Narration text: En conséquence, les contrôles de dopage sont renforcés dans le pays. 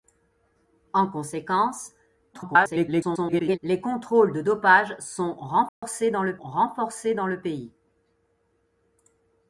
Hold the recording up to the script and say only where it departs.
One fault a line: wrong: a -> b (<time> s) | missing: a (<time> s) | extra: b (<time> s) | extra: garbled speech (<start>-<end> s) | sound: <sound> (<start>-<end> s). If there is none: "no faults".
extra: garbled speech (2.3-3.6 s)
sound: dropout (5.7-5.8 s)
extra: renforcés dans le (6.4 s)